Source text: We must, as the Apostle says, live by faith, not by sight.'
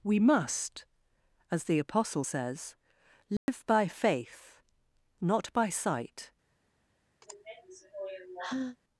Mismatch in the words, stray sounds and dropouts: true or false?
true